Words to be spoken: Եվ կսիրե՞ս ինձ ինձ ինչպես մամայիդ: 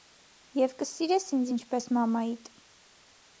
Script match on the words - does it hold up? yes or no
no